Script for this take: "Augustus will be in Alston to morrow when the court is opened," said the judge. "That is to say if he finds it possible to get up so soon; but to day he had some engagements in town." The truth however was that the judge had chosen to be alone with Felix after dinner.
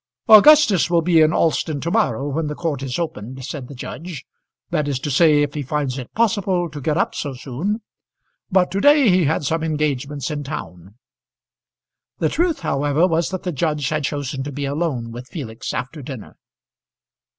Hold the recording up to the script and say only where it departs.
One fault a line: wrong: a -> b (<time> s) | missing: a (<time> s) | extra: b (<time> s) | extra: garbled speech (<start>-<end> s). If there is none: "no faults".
no faults